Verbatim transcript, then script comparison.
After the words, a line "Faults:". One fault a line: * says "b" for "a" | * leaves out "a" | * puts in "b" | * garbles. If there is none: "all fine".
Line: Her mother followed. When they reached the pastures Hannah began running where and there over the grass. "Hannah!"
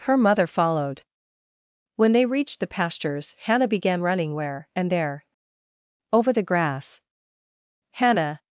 Her mother followed. When they reached the pastures Hannah began running where and there over the grass. "Hannah!"
Faults:
all fine